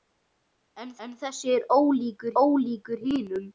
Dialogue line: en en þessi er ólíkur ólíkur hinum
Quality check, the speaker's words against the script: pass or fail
pass